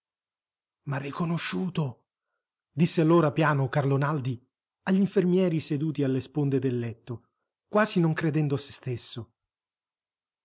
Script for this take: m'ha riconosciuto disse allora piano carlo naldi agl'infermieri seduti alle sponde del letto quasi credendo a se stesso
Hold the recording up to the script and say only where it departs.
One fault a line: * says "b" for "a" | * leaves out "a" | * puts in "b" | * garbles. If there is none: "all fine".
* puts in "non"